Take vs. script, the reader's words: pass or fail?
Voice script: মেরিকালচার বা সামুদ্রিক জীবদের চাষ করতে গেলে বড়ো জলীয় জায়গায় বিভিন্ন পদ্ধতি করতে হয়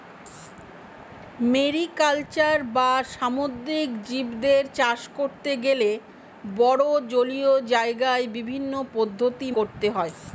pass